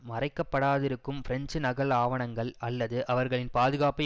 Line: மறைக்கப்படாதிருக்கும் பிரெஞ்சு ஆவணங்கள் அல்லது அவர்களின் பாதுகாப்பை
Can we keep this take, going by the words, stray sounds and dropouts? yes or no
no